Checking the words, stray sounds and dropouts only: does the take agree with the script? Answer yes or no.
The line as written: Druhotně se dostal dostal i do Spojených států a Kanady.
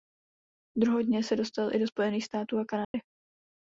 no